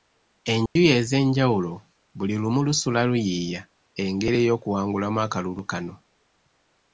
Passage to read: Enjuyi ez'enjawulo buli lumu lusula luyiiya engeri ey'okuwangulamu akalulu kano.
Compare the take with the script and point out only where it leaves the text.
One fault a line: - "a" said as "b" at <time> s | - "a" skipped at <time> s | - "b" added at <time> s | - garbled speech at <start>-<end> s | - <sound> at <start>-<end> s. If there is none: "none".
- dropout at 0.7-0.8 s